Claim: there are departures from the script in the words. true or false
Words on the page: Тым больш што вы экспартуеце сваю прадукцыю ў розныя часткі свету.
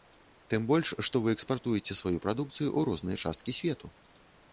false